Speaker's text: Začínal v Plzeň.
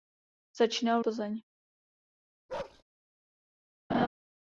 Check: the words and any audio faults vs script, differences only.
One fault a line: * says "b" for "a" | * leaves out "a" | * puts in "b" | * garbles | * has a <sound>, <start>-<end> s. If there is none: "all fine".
* has a bark, 2.5-2.8 s
* has a laugh, 3.9-4.1 s